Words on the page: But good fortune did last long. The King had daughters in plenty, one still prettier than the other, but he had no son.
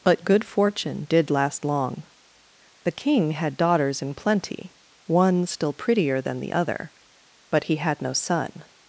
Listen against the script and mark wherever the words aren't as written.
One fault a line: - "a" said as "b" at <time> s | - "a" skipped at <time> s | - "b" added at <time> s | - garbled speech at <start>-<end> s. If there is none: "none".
none